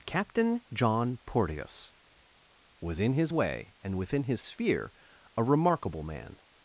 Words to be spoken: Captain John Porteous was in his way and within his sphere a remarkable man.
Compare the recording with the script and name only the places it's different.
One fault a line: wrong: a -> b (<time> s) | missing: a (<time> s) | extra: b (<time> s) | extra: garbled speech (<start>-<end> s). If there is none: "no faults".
no faults